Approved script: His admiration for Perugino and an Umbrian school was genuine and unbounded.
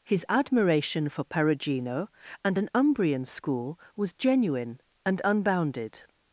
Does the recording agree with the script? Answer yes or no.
yes